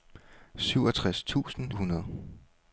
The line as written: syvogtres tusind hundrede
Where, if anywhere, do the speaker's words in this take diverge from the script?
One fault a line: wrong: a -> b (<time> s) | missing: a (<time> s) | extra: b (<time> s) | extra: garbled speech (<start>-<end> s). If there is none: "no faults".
no faults